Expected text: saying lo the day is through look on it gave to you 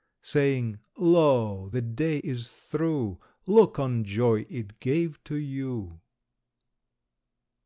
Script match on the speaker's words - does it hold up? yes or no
no